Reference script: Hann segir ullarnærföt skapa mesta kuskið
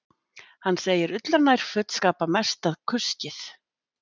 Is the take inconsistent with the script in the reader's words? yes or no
no